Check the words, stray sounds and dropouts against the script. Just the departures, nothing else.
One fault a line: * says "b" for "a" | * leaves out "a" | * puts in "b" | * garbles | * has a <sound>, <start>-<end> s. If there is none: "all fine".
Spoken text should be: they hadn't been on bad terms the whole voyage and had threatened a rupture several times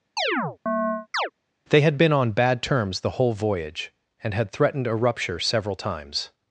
* has a chirp, 0.2-1.3 s
* says "had" for "hadn't"